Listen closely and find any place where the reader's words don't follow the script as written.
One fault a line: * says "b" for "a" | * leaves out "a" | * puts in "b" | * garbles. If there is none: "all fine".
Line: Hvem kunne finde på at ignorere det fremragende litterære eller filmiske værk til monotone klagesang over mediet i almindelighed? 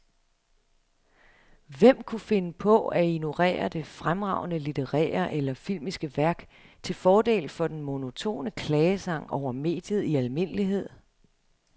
* puts in "fordel for den"